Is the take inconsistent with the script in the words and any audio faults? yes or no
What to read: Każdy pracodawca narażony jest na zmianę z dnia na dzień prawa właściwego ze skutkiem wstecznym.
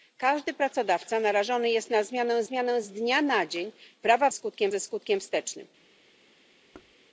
yes